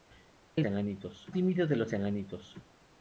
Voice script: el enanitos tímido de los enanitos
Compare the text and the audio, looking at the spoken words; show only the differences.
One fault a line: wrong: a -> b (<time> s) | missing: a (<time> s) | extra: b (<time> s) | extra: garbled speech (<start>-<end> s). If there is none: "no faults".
no faults